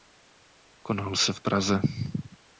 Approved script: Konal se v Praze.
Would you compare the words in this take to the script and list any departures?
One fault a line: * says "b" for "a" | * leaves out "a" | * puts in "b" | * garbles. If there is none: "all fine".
all fine